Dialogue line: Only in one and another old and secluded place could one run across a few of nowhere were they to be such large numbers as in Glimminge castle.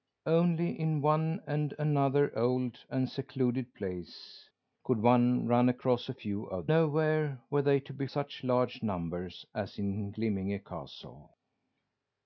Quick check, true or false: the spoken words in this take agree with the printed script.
true